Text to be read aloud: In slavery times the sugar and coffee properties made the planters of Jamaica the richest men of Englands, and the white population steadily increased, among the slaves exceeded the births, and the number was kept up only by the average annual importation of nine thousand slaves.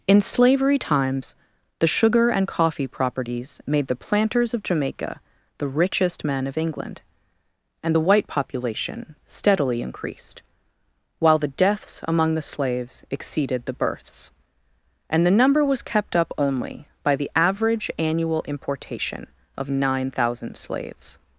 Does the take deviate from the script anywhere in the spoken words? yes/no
yes